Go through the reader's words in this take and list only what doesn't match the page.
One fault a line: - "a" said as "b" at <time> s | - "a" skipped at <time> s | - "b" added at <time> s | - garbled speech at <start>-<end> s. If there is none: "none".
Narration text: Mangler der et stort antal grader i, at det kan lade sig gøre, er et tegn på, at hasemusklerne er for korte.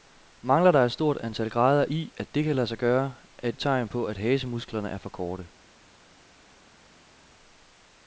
none